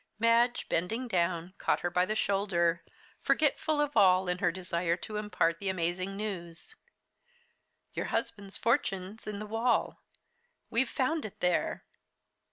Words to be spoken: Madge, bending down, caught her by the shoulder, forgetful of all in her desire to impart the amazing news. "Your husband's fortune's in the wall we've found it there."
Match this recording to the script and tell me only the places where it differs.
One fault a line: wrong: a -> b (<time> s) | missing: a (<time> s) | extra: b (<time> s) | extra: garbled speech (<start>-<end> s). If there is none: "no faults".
no faults